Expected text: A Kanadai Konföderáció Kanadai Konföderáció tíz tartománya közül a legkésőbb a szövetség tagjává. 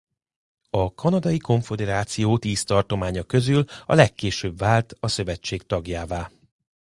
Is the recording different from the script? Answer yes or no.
yes